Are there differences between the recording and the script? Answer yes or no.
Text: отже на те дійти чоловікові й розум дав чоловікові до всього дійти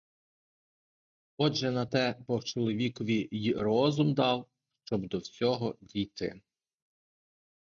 yes